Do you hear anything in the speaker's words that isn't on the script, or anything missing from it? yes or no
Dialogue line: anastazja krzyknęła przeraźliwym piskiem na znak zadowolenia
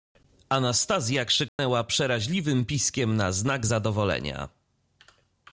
no